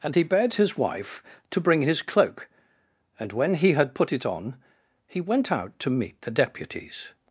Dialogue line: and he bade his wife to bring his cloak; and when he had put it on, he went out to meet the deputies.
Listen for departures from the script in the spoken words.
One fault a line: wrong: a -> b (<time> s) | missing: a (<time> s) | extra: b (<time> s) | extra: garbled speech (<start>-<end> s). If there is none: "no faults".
no faults